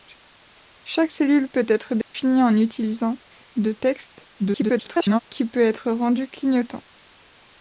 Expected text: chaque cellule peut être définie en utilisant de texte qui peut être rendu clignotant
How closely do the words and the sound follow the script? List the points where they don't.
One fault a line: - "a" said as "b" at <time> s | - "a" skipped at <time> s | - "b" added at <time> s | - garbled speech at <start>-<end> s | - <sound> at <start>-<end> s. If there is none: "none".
- dropout at 2.0-2.1 s
- garbled speech at 4.4-5.2 s